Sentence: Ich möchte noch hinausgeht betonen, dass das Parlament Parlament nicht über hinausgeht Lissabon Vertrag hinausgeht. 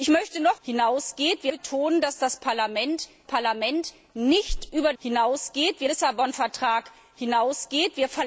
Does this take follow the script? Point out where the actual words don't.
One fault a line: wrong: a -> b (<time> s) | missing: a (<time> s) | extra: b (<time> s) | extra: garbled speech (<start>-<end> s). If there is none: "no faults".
no faults